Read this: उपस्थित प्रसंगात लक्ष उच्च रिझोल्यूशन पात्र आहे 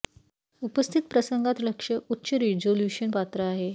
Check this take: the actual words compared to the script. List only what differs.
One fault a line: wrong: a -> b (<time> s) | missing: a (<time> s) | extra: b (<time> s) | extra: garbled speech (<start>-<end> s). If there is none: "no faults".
no faults